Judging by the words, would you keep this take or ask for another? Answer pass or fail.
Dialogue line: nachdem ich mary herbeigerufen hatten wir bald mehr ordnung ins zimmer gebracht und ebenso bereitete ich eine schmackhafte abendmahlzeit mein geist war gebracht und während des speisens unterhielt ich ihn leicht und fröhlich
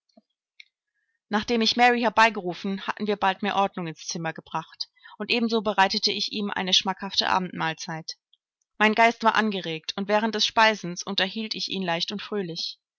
fail